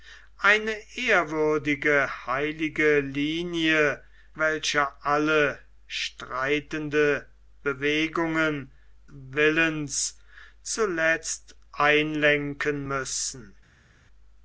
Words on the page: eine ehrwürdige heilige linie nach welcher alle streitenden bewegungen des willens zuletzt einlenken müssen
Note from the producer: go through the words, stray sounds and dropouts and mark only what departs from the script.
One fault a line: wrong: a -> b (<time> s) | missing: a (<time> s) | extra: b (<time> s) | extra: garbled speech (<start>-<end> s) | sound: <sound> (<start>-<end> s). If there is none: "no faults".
missing: nach (4.0 s)
missing: des (8.7 s)